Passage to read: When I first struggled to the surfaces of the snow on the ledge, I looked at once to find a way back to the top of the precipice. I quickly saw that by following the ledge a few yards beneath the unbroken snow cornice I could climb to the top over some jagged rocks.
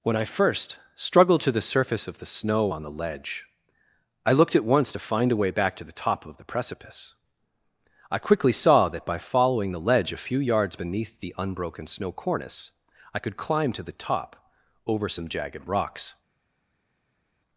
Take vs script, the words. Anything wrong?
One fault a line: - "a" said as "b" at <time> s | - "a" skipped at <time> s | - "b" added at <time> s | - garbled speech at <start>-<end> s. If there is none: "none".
- "surfaces" said as "surface" at 1.6 s